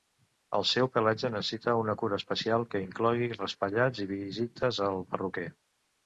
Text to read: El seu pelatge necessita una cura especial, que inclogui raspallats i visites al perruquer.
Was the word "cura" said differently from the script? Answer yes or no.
no